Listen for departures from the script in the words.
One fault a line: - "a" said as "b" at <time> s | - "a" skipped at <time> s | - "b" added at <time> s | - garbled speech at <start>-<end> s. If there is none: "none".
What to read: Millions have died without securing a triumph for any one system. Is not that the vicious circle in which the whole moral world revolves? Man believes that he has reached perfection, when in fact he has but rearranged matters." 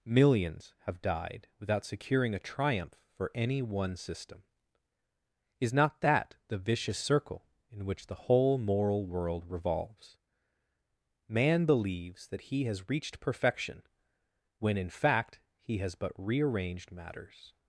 none